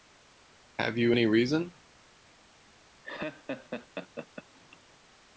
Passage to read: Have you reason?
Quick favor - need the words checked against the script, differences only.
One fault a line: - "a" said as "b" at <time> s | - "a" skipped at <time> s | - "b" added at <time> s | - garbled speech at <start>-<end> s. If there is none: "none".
- "any" added at 1.1 s